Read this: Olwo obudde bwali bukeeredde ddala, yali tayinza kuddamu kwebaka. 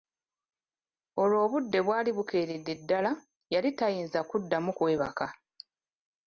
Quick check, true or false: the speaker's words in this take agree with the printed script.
true